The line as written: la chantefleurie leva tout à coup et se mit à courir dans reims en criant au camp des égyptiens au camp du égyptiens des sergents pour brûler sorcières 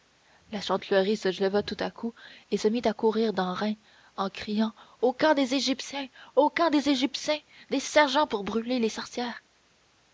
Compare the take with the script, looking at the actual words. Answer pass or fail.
fail